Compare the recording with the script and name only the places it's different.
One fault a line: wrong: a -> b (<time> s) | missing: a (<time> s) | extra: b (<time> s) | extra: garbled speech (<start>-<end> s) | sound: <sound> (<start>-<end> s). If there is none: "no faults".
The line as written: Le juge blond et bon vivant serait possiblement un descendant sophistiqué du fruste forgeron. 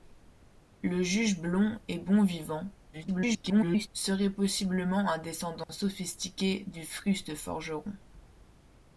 extra: garbled speech (2.9-3.9 s)
sound: dropout (5.6-5.7 s)